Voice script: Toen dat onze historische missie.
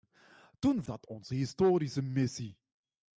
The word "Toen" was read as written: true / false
true